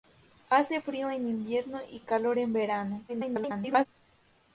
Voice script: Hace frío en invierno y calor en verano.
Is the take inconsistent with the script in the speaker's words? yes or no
yes